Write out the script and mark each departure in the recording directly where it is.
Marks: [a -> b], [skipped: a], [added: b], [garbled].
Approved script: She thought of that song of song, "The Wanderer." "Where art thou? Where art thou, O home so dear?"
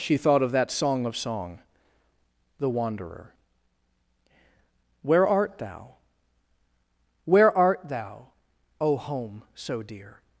She thought of that song of song, "The Wanderer." "Where art thou? Where art thou, O home so dear?"